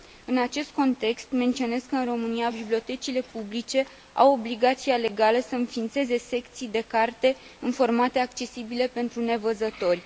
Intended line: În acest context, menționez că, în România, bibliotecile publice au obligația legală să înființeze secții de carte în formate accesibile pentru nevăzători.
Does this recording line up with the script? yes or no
yes